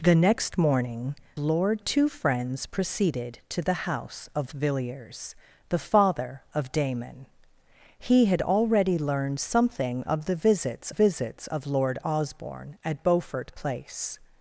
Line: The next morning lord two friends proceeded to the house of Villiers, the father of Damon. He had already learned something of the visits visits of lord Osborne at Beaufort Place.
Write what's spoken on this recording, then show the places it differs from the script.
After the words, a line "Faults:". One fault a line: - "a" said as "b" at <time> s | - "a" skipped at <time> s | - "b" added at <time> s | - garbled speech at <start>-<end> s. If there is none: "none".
The next morning lord two friends proceeded to the house of Villiers, the father of Damon. He had already learned something of the visits visits of lord Osborne at Beaufort Place.
Faults:
none